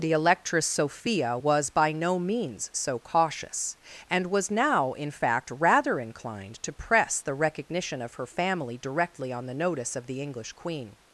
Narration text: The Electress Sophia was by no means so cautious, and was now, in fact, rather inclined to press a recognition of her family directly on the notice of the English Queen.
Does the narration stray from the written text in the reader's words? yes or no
yes